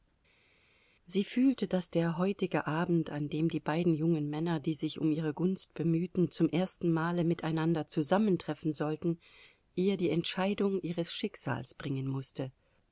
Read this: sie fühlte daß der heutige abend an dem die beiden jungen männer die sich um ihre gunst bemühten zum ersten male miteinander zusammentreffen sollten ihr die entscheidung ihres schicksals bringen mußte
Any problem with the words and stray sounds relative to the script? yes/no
no